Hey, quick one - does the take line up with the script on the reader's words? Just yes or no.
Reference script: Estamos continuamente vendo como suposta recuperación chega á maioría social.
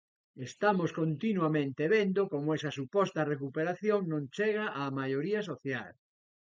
no